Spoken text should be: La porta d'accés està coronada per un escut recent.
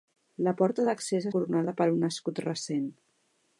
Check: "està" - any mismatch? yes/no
yes